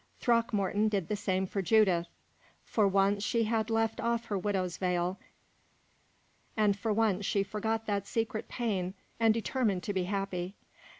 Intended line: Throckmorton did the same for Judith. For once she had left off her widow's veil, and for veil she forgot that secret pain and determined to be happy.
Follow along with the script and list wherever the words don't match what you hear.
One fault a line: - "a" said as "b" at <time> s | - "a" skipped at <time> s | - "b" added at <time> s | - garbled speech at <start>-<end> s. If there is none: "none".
- "veil" said as "once" at 6.9 s